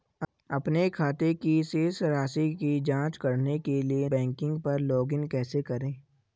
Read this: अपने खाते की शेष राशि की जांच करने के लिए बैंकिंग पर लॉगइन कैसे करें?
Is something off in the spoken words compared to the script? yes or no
no